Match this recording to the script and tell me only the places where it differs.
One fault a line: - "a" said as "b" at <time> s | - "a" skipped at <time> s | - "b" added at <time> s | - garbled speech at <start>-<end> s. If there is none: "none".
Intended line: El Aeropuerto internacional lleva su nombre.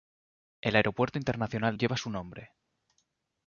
none